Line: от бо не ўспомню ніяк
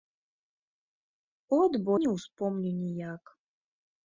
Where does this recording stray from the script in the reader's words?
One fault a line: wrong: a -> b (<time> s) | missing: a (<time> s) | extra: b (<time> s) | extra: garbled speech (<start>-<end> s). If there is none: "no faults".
no faults